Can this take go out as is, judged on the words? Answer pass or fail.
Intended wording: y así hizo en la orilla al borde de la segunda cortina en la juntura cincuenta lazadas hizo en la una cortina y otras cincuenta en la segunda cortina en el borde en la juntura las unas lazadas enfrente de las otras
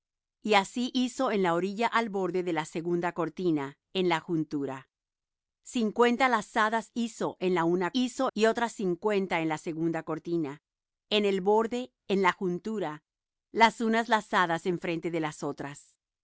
fail